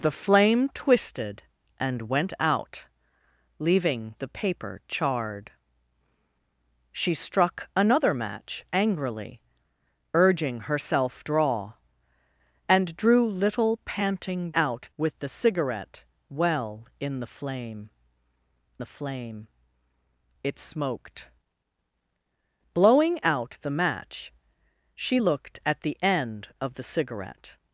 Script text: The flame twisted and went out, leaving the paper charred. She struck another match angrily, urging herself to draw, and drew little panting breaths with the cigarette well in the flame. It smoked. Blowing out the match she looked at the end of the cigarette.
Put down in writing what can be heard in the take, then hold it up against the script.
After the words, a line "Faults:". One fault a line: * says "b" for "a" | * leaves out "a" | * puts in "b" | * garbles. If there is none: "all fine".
The flame twisted and went out, leaving the paper charred. She struck another match angrily, urging herself draw, and drew little panting out with the cigarette well in the flame the flame. It smoked. Blowing out the match she looked at the end of the cigarette.
Faults:
* leaves out "to"
* says "out" for "breaths"
* puts in "the flame"